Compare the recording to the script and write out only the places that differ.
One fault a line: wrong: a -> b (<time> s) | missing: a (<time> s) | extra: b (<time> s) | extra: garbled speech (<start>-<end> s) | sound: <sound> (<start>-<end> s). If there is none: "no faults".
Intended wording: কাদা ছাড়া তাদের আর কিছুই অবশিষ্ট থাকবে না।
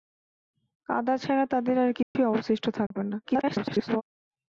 sound: dropout (2.0-2.2 s)
sound: dropout (2.9-2.9 s)
extra: garbled speech (3.2-4.0 s)